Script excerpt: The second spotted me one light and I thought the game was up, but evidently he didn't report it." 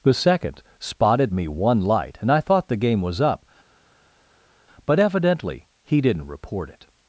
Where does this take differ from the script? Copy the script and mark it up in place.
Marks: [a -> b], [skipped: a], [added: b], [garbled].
The second spotted me one light and I thought the game was up, but evidently he didn't report it."